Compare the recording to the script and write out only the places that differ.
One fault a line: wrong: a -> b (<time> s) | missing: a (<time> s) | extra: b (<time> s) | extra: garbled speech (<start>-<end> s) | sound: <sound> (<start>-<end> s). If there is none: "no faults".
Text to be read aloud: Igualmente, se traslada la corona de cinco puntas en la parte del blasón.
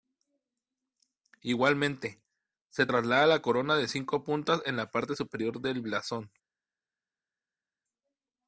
extra: superior (5.1 s)